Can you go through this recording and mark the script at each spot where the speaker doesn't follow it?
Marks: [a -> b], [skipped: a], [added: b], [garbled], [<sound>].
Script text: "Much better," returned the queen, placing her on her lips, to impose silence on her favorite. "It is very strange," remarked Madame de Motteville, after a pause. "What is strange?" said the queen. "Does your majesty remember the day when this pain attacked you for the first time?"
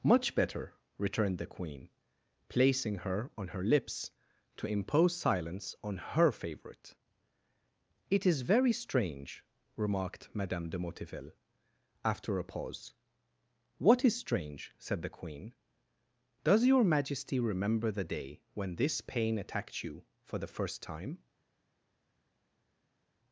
"Much better," returned the queen, placing her on her lips, to impose silence on her favorite. "It is very strange," remarked Madame de Motteville, after a pause. "What is strange?" said the queen. "Does your majesty remember the day when this pain attacked you for the first time?"